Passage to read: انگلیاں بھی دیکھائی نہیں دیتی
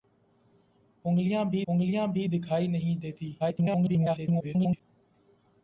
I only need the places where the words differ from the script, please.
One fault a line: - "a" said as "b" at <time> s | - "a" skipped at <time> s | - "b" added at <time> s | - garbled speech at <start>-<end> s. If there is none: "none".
- "انگلیاں بھی" added at 1.7 s
- garbled speech at 3.4-4.8 s